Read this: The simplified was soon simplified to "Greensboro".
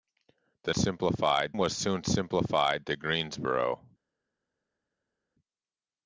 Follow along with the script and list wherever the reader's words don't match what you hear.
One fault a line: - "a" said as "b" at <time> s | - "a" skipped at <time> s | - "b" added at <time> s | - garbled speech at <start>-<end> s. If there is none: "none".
none